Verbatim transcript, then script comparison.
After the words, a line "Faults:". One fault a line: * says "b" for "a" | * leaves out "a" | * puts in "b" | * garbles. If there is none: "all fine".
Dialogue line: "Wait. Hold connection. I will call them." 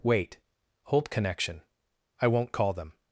"Wait. Hold connection. I won't call them."
Faults:
* says "won't" for "will"